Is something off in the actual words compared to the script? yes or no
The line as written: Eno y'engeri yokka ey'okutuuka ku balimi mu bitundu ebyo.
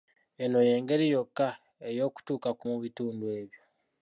yes